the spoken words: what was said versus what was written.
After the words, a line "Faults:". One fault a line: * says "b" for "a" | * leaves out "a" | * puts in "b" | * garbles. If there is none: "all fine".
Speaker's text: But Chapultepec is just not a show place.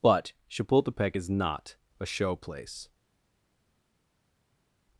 But Chapultepec is not a show place.
Faults:
* leaves out "just"